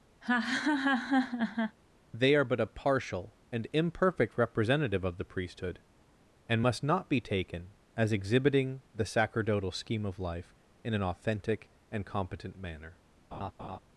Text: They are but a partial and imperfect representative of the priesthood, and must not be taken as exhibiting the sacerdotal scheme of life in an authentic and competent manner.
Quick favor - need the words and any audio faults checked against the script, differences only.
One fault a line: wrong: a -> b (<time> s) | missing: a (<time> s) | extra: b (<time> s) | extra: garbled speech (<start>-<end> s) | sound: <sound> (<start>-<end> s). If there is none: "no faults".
sound: laugh (0.2-1.8 s)
sound: laugh (13.3-13.8 s)